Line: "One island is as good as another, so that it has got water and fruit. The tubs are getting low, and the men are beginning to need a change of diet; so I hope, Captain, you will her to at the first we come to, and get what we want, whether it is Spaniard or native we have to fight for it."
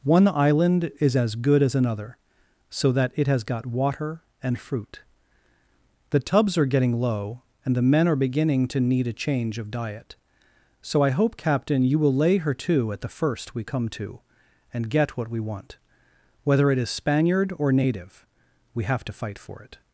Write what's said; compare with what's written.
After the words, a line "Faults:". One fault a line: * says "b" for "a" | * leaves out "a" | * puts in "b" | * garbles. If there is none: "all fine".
"One island is as good as another, so that it has got water and fruit. The tubs are getting low, and the men are beginning to need a change of diet; so I hope, Captain, you will lay her to at the first we come to, and get what we want, whether it is Spaniard or native we have to fight for it."
Faults:
* puts in "lay"